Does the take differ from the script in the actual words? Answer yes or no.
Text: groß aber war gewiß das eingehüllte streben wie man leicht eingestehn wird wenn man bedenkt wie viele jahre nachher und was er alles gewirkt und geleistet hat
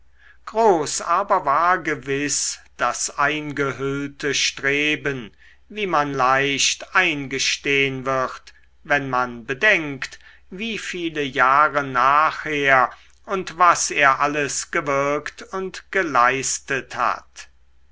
no